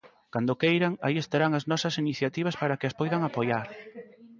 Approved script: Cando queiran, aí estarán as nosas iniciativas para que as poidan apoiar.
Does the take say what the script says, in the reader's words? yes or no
yes